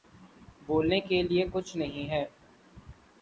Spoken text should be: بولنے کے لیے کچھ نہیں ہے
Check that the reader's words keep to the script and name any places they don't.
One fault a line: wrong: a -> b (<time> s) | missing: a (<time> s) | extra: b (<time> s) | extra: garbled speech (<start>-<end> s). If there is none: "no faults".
no faults